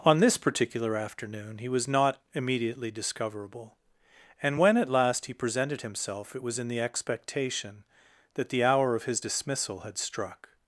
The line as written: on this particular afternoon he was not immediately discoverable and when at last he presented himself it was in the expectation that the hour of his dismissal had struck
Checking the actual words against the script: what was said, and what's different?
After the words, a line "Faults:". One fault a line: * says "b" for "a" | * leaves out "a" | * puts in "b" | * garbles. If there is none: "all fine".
on this particular afternoon he was not immediately discoverable and when at last he presented himself it was in the expectation that the hour of his dismissal had struck
Faults:
all fine